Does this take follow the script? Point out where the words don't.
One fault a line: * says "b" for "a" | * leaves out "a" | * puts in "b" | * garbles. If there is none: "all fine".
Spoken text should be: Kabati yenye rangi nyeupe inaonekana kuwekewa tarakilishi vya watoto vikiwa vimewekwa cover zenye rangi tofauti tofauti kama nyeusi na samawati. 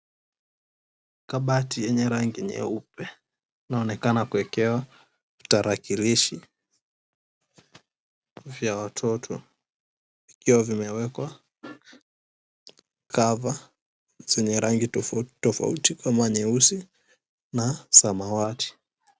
all fine